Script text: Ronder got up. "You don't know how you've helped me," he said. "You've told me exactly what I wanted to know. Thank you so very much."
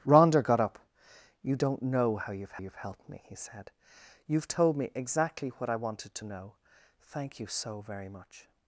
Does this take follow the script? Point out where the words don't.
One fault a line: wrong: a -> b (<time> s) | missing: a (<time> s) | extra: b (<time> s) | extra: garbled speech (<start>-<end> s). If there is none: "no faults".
extra: you've (2.6 s)